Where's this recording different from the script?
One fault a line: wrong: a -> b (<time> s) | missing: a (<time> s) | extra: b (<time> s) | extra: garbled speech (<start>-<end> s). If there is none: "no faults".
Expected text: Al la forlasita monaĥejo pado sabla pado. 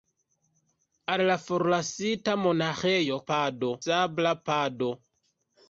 no faults